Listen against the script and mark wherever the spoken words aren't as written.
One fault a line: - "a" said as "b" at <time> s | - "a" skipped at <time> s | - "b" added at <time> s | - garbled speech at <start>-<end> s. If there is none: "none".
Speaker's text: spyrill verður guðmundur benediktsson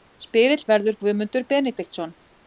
none